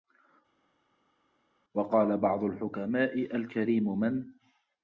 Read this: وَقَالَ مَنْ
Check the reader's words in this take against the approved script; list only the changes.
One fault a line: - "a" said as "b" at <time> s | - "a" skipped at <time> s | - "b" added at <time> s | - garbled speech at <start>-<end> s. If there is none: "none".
- "بَعْضُ الْحُكَمَاءِ الْكَرِيمُ" added at 2.2 s